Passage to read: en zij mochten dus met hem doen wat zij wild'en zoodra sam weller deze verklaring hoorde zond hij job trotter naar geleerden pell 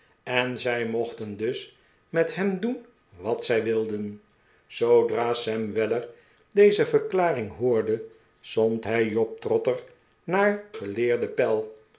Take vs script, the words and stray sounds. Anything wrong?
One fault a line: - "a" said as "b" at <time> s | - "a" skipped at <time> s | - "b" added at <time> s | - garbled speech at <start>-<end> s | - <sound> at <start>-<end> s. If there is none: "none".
none